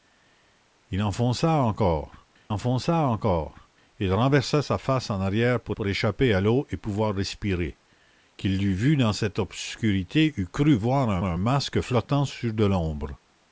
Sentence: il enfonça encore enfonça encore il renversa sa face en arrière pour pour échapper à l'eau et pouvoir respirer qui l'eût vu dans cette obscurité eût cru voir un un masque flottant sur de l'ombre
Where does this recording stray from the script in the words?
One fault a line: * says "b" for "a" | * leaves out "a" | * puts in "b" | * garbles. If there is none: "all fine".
all fine